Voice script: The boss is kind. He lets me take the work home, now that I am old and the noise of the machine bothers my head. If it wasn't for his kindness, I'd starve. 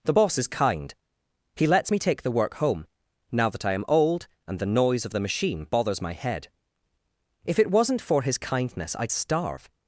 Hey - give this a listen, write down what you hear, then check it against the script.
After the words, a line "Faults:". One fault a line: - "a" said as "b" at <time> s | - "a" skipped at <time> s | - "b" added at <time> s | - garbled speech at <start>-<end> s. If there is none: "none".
The boss is kind. He lets me take the work home, now that I am old and the noise of the machine bothers my head. If it wasn't for his kindness, I'd starve.
Faults:
none